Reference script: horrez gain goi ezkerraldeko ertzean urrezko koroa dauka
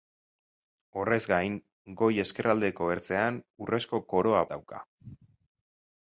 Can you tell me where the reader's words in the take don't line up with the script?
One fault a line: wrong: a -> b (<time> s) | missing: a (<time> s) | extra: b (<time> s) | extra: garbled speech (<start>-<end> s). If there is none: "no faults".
no faults